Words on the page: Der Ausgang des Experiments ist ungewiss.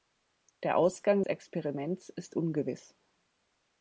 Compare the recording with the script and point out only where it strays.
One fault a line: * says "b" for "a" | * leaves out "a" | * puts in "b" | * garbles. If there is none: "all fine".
* leaves out "des"